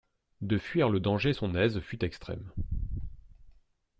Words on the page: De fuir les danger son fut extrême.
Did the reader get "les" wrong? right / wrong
wrong